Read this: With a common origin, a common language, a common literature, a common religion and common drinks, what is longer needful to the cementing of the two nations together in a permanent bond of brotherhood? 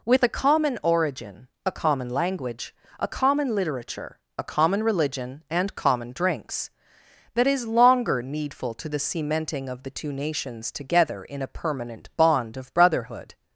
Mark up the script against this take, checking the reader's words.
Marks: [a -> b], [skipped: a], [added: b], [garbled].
With a common origin, a common language, a common literature, a common religion and common drinks, [what -> that] is longer needful to the cementing of the two nations together in a permanent bond of brotherhood?